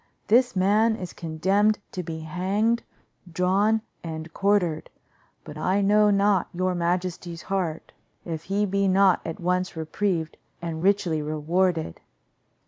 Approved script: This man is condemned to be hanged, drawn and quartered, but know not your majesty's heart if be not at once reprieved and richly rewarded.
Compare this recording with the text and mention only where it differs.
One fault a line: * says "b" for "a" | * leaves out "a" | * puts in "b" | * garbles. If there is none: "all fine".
* puts in "I"
* puts in "he"